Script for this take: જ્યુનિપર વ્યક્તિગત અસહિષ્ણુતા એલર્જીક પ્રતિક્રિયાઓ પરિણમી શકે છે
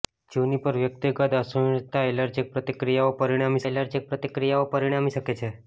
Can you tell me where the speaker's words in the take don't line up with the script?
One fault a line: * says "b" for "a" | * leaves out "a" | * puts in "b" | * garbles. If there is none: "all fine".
* puts in "એલર્જીક પ્રતિક્રિયાઓ પરિણમી"